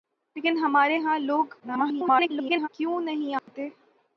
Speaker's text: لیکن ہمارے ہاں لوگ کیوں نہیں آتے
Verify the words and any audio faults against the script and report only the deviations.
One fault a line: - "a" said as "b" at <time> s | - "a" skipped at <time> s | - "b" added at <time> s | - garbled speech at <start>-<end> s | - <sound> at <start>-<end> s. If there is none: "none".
- garbled speech at 1.6-2.7 s
- dropout at 3.4-3.5 s